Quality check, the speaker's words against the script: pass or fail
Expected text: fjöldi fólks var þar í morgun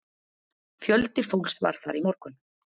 pass